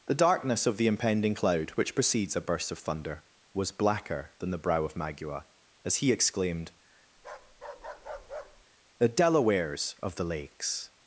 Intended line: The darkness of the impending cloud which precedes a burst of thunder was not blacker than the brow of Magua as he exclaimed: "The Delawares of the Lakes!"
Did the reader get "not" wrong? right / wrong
wrong